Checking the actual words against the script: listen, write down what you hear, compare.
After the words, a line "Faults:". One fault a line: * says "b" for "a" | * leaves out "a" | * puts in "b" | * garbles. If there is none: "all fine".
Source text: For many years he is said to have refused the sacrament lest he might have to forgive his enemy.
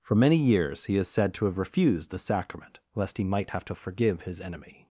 For many years he is said to have refused the sacrament lest he might have to forgive his enemy.
Faults:
all fine